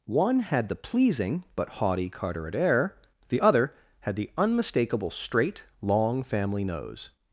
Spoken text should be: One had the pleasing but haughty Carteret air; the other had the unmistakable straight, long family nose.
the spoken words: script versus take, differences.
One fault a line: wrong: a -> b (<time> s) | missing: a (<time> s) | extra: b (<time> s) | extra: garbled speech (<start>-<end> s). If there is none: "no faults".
no faults